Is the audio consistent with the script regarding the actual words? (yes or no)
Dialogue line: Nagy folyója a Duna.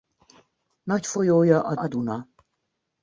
no